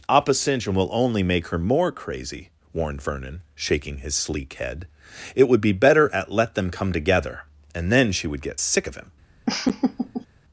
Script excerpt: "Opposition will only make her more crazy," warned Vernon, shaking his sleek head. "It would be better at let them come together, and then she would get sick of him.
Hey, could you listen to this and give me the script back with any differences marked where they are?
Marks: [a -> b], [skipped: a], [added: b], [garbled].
"Opposition will only make her more crazy," warned Vernon, shaking his sleek head. "It would be better at let them come together, and then she would get sick of him.